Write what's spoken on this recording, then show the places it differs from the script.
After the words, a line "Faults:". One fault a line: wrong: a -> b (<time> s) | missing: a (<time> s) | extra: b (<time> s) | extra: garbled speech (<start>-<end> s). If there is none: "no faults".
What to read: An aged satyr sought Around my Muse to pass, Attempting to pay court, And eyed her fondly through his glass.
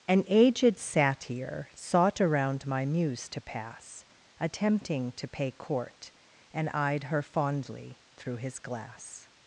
An aged satyr sought Around my Muse to pass, Attempting to pay court, And eyed her fondly through his glass.
Faults:
no faults